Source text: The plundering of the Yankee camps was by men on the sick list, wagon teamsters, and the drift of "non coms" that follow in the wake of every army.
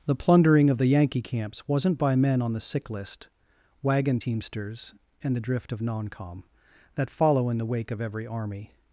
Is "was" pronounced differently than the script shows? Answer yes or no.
yes